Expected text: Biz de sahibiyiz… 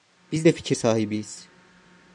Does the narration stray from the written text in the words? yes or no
yes